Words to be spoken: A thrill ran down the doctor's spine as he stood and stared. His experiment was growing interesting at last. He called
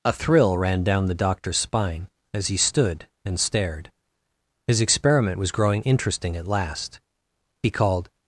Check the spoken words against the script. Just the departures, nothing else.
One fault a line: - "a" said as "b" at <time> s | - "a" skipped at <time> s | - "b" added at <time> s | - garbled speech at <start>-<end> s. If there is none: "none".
none